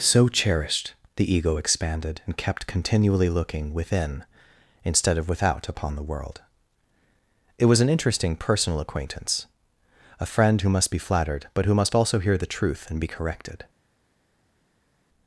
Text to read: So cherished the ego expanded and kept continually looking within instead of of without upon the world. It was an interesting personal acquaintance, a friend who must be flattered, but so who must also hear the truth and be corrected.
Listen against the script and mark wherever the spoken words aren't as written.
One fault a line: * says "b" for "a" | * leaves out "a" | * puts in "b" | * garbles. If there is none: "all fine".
* leaves out "of"
* leaves out "so"